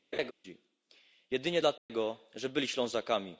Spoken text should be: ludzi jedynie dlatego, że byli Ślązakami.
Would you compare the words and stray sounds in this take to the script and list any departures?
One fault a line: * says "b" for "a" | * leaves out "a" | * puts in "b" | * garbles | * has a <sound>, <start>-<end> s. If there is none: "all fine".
* has a laugh, 0.1-0.3 s
* has a dropout, 1.8-1.9 s